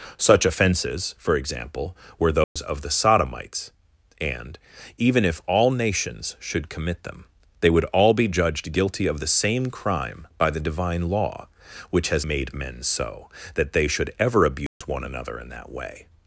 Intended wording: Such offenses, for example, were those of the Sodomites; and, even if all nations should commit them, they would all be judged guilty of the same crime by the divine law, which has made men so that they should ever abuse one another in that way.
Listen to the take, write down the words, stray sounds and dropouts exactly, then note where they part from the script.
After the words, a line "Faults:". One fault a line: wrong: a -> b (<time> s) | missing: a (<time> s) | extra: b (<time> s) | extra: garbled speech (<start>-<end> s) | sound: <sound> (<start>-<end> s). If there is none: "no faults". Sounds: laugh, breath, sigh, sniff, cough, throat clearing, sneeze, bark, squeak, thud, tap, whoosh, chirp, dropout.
Such offenses, for example, were those of the Sodomites; and, even if all nations should commit them, they would all be judged guilty of the same crime by the divine law, which has made men so that they should ever abuse one another in that way.
Faults:
sound: dropout (2.4-2.6 s)
sound: dropout (14.7-14.8 s)